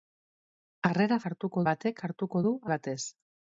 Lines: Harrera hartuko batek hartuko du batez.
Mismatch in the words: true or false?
false